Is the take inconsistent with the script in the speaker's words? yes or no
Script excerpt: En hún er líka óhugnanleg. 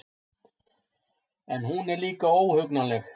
no